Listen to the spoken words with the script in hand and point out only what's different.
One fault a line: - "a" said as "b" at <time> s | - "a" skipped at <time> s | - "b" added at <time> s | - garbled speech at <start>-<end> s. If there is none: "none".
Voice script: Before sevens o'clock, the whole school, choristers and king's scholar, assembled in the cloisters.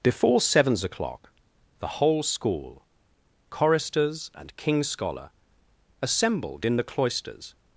none